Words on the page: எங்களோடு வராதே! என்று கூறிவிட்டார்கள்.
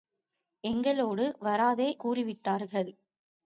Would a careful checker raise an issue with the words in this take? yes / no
yes